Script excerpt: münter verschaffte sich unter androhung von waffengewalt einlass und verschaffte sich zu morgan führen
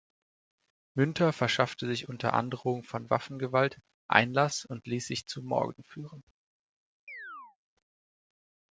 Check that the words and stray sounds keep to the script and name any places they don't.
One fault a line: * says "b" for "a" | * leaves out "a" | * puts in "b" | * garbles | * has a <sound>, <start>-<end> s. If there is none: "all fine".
* says "ließ" for "verschaffte"
* has a chirp, 7.1-7.6 s